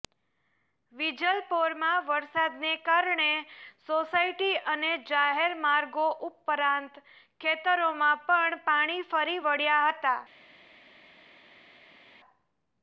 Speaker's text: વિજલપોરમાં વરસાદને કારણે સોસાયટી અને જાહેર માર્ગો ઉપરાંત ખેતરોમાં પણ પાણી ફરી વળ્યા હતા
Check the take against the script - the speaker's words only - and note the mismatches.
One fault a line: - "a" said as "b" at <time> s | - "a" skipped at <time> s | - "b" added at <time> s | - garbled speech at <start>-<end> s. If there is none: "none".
none